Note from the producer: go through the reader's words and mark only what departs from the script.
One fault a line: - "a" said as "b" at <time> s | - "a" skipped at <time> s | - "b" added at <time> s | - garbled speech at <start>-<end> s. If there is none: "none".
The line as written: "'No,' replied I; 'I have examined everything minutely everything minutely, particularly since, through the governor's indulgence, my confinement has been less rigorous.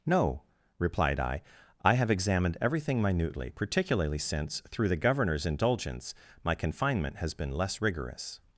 - "everything minutely" skipped at 3.5 s